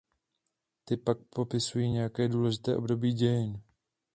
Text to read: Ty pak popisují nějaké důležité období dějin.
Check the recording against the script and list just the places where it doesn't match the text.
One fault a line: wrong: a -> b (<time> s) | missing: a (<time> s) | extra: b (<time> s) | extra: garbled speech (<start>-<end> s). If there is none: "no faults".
no faults